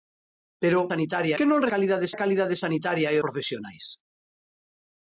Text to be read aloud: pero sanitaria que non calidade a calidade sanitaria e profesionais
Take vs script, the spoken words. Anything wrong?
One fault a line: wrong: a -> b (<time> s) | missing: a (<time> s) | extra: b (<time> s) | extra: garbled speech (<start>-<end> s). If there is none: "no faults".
no faults